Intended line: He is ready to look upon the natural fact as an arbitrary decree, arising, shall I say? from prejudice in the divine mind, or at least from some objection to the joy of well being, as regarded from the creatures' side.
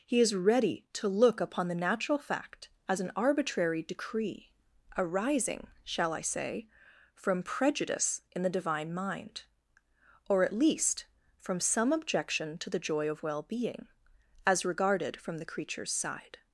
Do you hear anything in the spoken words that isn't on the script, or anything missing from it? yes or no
no